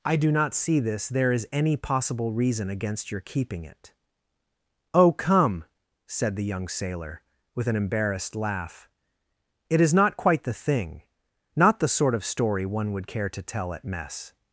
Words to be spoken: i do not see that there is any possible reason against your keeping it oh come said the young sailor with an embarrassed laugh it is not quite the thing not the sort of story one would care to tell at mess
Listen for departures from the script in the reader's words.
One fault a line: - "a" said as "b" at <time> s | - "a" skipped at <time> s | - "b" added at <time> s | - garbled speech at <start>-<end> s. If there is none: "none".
- "that" said as "this" at 0.8 s